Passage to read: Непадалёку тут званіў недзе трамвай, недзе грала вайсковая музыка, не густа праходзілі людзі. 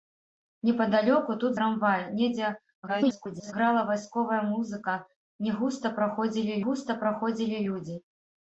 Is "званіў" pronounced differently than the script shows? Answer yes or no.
yes